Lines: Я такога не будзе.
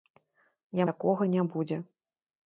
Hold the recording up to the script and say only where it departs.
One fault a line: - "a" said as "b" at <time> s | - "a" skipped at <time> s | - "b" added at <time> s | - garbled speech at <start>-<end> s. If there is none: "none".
none